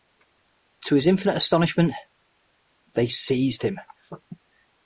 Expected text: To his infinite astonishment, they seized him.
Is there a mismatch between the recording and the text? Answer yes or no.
no